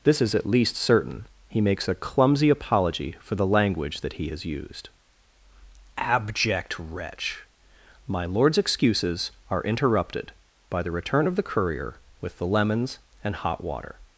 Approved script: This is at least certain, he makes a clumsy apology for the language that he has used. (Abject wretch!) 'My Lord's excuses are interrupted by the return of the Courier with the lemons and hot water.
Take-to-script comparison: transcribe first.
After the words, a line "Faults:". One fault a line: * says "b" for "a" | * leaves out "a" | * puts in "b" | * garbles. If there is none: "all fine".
This is at least certain, he makes a clumsy apology for the language that he has used. (Abject wretch!) 'My Lord's excuses are interrupted by the return of the Courier with the lemons and hot water.
Faults:
all fine